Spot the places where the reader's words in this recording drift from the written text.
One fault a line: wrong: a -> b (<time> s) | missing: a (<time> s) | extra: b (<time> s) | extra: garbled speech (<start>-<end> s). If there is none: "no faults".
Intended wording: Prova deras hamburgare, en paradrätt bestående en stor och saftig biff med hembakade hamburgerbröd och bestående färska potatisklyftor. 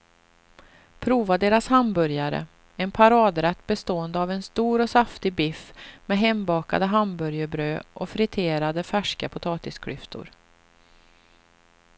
extra: av (4.2 s)
wrong: bestående -> friterade (8.1 s)